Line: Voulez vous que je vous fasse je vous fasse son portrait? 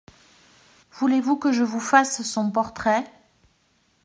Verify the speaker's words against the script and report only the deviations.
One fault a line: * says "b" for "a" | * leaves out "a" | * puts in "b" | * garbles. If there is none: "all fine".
* leaves out "je vous fasse"